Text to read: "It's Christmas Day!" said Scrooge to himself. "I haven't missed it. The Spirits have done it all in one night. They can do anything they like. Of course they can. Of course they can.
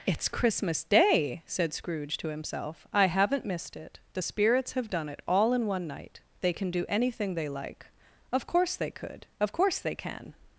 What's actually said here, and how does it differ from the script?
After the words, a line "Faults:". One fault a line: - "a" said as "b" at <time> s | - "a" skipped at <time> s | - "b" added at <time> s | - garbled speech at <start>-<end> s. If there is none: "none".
"It's Christmas Day!" said Scrooge to himself. "I haven't missed it. The Spirits have done it all in one night. They can do anything they like. Of course they could. Of course they can.
Faults:
- "can" said as "could" at 8.9 s